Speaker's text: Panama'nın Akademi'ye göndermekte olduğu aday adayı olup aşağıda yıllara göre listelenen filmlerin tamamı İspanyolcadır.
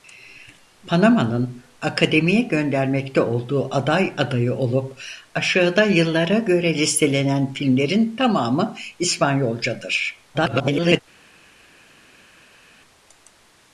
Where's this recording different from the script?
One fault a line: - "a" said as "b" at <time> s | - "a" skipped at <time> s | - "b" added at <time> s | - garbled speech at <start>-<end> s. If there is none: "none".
- garbled speech at 10.3-11.0 s